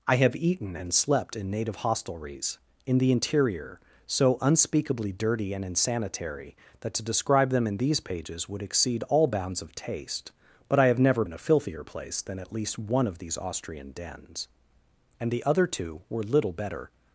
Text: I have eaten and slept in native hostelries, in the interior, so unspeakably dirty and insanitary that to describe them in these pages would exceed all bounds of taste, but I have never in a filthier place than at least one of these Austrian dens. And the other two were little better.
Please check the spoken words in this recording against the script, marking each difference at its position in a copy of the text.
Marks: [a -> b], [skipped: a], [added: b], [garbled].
I have eaten and slept in native hostelries, in the interior, so unspeakably dirty and insanitary that to describe them in these pages would exceed all bounds of taste, but I have never in a filthier place than at least one of these Austrian dens. And the other two were little better.